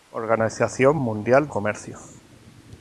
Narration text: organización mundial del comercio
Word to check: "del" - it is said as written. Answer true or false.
false